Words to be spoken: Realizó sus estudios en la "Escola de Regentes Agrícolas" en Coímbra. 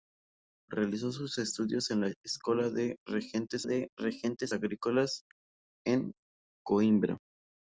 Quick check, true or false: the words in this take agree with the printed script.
false